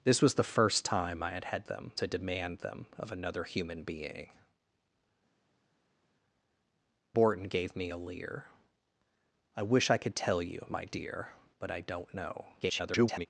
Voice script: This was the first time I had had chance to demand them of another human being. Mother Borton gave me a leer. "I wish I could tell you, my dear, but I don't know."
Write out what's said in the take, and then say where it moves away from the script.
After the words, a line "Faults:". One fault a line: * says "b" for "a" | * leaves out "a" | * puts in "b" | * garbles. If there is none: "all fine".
This was the first time I had had them to demand them of another human being. Borton gave me a leer. "I wish I could tell you, my dear, but I don't know." [garbled]
Faults:
* says "them" for "chance"
* leaves out "Mother"
* garbles